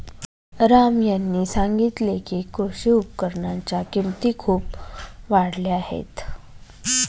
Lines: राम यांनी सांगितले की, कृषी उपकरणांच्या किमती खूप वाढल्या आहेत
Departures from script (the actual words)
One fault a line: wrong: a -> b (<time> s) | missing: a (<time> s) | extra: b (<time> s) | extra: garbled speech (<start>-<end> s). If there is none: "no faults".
no faults